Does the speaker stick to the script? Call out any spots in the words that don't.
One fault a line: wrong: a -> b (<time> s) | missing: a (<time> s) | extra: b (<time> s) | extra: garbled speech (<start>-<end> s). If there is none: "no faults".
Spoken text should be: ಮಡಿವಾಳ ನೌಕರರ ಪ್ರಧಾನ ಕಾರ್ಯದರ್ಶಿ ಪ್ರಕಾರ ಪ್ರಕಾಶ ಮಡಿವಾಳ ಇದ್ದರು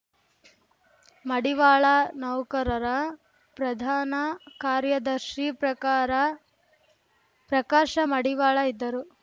no faults